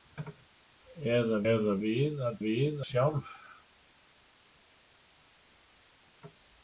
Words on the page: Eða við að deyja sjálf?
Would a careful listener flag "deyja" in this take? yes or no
yes